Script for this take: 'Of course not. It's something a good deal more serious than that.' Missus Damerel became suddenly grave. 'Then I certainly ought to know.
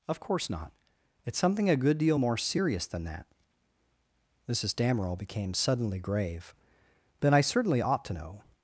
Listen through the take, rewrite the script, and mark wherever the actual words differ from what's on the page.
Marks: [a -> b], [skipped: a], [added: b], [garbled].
'Of course not. It's something a good deal more serious than that.' Missus Damerel became suddenly grave. 'Then I certainly ought to know.